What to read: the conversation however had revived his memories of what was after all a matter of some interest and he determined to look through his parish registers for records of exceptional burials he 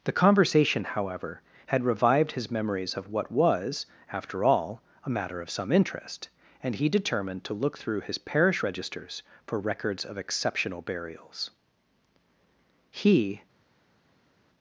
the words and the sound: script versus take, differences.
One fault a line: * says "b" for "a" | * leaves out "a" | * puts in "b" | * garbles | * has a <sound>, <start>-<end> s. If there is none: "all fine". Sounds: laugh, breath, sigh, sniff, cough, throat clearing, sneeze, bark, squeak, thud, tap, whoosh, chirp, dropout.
all fine